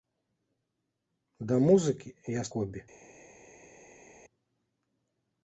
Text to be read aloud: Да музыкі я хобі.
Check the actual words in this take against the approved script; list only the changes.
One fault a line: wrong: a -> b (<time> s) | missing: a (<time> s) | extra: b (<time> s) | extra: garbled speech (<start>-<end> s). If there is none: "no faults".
no faults